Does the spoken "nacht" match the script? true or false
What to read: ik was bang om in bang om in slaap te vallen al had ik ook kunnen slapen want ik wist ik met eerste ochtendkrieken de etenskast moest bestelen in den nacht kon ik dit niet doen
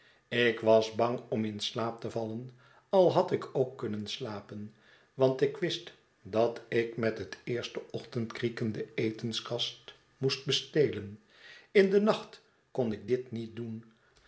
true